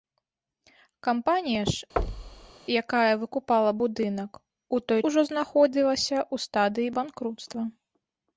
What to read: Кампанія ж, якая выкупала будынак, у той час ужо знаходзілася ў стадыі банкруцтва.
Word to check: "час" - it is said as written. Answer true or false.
false